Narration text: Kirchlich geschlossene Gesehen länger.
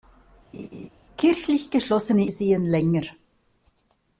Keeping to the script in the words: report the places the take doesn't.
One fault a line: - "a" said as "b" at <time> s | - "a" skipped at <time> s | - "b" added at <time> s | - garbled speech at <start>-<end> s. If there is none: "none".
none